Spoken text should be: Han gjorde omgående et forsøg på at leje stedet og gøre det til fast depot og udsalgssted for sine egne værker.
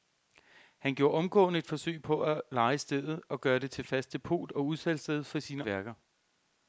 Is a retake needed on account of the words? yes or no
yes